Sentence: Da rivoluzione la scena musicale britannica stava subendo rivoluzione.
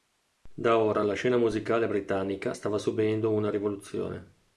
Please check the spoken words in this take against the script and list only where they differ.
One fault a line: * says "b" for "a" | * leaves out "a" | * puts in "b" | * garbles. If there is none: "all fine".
* says "ora" for "rivoluzione"
* puts in "una"